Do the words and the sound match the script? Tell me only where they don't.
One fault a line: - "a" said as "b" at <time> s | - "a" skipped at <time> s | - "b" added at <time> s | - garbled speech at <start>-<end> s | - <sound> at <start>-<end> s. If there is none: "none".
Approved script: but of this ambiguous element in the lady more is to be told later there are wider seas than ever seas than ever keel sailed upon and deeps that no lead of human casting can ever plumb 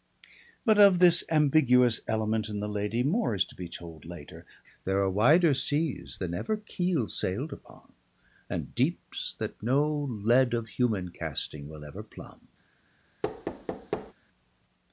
- "seas than ever" skipped at 6.6 s
- "can" said as "will" at 11.7 s
- thud at 13.2-14.1 s